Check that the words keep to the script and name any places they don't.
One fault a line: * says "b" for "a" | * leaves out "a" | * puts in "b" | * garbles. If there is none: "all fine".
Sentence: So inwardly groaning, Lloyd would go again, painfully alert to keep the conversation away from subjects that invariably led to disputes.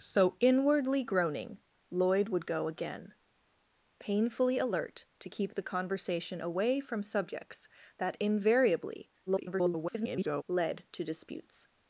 * garbles